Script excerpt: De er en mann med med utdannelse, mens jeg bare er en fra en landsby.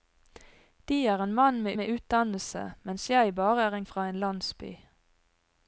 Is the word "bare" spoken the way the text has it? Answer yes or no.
yes